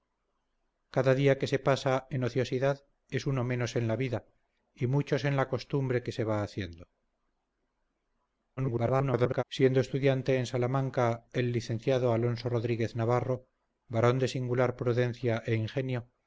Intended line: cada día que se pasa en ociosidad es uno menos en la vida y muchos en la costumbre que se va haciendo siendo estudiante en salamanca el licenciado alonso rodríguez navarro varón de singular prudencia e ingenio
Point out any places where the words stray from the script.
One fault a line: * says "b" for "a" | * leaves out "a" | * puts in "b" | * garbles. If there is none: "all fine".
* garbles